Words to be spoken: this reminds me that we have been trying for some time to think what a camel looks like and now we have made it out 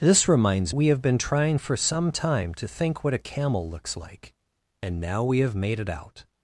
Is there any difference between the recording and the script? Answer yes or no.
yes